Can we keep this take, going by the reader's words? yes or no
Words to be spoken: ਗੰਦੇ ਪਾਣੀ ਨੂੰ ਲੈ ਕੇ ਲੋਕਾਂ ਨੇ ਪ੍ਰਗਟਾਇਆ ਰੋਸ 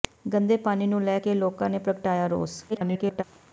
no